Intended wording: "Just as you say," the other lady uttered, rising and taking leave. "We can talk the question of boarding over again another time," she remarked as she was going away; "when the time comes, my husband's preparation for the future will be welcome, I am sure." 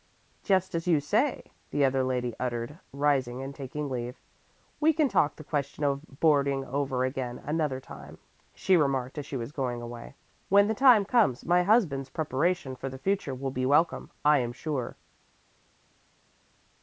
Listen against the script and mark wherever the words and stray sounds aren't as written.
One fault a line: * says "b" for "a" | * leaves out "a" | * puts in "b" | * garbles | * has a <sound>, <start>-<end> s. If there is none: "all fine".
all fine